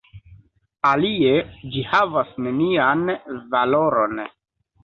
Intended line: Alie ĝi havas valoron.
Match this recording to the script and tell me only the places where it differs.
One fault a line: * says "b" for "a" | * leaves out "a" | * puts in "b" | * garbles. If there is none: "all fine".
* puts in "nenian"